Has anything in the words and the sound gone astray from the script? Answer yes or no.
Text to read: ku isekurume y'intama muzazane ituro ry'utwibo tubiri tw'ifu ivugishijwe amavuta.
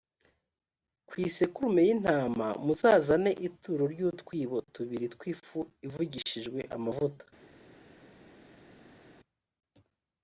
no